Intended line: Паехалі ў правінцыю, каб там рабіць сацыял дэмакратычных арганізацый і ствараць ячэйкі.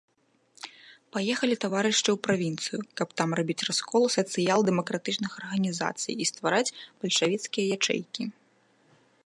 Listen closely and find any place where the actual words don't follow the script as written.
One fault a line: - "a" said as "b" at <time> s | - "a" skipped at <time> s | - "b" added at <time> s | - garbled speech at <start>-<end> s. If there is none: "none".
- "таварышы" added at 1.6 s
- "раскол" added at 3.7 s
- "бальшавіцкія" added at 7.0 s